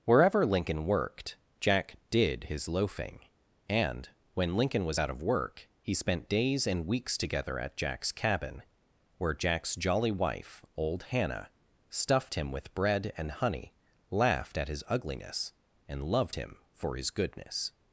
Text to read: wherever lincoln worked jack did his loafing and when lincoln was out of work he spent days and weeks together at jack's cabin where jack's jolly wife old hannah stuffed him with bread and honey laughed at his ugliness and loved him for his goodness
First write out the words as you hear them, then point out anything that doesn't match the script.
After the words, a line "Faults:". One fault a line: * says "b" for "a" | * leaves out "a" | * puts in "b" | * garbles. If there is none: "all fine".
wherever lincoln worked jack did his loafing and when lincoln was out of work he spent days and weeks together at jack's cabin where jack's jolly wife old hannah stuffed him with bread and honey laughed at his ugliness and loved him for his goodness
Faults:
all fine